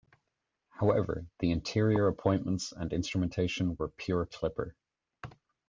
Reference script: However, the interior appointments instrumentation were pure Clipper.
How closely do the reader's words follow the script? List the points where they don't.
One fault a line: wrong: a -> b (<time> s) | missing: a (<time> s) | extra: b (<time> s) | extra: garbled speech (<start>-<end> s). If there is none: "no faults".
extra: and (2.7 s)